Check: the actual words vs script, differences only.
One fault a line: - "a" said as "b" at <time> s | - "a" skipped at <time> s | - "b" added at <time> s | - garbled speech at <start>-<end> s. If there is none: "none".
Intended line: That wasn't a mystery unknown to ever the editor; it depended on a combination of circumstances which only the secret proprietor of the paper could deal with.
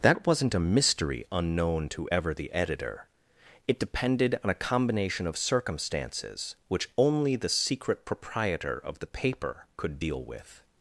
none